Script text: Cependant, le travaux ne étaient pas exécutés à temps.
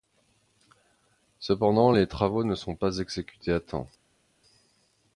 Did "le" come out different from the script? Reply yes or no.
yes